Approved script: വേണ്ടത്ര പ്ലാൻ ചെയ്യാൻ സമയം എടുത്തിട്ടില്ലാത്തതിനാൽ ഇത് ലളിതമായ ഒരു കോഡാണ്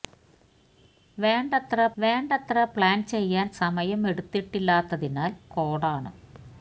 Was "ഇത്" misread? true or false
true